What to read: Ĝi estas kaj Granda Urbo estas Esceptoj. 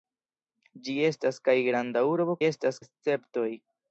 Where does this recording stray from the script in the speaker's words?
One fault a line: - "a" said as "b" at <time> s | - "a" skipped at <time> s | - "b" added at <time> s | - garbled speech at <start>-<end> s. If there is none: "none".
none